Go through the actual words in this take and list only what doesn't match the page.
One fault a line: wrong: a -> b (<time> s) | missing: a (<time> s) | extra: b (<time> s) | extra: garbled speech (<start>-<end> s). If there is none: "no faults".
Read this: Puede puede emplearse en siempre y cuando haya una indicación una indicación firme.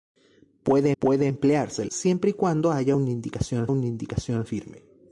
no faults